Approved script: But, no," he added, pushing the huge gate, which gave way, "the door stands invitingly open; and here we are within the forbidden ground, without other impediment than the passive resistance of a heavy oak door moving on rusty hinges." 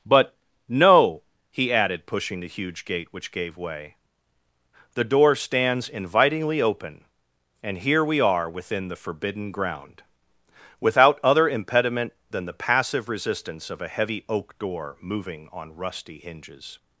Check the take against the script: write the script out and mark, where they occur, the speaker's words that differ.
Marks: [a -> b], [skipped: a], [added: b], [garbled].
But, no," he added, pushing the huge gate, which gave way, "the door stands invitingly open; and here we are within the forbidden ground, without other impediment than the passive resistance of a heavy oak door moving on rusty hinges."